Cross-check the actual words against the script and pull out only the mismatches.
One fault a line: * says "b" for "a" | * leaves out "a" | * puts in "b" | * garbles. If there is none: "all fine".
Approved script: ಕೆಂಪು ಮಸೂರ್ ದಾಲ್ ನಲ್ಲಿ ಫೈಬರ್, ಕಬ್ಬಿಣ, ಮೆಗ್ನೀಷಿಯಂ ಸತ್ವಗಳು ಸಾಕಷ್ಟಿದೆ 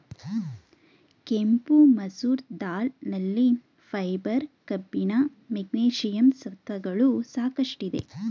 all fine